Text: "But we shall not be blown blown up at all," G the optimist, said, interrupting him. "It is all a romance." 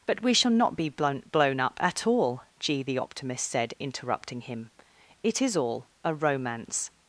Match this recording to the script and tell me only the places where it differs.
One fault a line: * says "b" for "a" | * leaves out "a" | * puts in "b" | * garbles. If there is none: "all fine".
all fine